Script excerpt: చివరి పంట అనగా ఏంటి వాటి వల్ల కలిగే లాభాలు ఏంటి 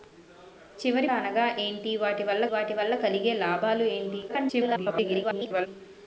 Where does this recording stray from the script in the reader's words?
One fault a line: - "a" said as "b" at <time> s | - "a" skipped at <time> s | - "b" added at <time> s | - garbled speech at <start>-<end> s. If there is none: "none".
- "పంట" skipped at 1.1 s
- "వాటి వల్ల" added at 2.5 s
- garbled speech at 4.3-5.7 s